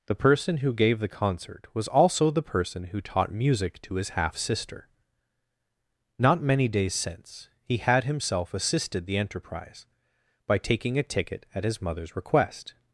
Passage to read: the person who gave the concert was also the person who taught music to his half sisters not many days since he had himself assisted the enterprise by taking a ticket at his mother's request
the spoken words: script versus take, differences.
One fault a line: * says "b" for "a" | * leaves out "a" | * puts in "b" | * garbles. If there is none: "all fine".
* says "sister" for "sisters"